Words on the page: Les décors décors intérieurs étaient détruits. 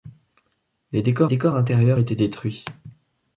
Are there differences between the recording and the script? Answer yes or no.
no